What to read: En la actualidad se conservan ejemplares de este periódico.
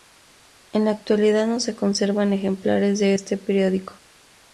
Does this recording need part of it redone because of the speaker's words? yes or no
yes